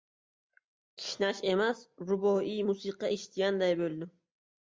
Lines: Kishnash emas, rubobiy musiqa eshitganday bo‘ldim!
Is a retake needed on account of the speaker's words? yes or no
no